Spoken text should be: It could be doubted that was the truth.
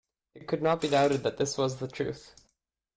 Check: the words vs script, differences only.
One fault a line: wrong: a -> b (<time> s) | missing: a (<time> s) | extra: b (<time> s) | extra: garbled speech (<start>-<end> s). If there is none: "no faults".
extra: not (0.6 s)
extra: this (1.4 s)